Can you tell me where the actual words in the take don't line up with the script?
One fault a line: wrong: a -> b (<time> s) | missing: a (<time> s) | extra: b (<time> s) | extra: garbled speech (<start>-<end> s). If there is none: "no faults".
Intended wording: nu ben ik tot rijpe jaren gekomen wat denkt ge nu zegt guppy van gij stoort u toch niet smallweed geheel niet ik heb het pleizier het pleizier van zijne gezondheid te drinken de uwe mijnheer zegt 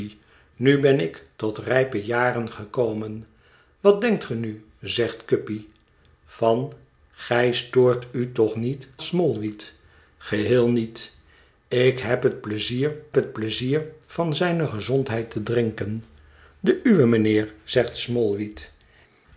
no faults